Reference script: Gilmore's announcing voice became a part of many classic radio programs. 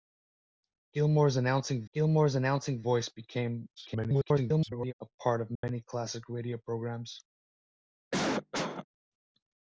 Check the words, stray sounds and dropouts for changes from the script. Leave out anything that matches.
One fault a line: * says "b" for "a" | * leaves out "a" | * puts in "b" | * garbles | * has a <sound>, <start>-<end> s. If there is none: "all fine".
* puts in "gilmore's announcing"
* garbles
* has a dropout, 5.6-5.6 s
* has a cough, 8.1-8.9 s